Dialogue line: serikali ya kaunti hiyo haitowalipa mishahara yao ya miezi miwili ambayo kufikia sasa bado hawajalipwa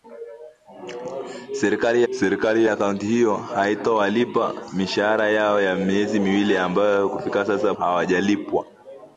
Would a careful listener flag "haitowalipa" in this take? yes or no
no